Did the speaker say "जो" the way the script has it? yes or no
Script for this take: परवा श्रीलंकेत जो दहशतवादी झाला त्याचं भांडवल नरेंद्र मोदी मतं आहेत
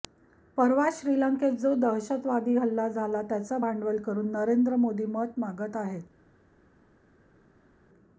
yes